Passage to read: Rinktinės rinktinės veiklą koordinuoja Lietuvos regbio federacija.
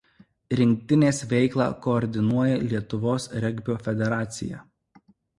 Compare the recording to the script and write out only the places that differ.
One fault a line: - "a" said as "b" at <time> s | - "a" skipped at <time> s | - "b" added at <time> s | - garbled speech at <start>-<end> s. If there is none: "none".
- "rinktinės" skipped at 1.2 s